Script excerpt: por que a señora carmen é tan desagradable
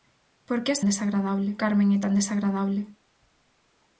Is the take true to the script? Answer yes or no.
no